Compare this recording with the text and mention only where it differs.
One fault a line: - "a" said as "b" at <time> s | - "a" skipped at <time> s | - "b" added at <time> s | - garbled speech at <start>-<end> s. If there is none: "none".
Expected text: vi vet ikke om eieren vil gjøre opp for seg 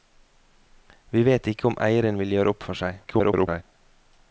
- garbled speech at 3.0-3.6 s